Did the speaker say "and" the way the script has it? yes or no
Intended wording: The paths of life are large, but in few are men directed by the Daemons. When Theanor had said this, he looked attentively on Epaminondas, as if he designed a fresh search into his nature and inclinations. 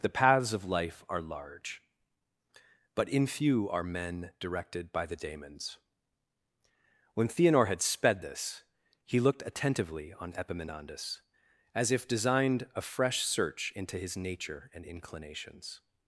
yes